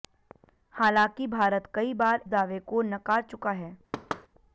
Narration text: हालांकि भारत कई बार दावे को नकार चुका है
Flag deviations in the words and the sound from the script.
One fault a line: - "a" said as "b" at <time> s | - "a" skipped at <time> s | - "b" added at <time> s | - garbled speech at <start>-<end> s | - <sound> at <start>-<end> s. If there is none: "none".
- thud at 3.9-4.3 s